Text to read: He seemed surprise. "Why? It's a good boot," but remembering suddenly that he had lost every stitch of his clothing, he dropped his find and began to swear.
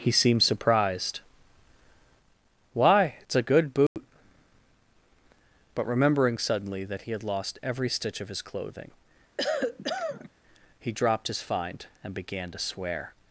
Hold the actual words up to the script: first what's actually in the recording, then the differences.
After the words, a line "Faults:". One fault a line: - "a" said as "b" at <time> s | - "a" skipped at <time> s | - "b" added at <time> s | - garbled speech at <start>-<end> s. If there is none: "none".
He seemed surprised. "Why? It's a good boot," but remembering suddenly that he had lost every stitch of his clothing, he dropped his find and began to swear.
Faults:
- "surprise" said as "surprised" at 0.4 s